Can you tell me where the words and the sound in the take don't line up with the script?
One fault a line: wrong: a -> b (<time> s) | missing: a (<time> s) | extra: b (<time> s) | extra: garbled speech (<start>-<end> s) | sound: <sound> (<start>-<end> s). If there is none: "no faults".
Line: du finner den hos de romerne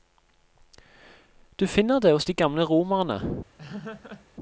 wrong: den -> det (2.0 s)
extra: gamle (2.3 s)
sound: laugh (3.6-4.3 s)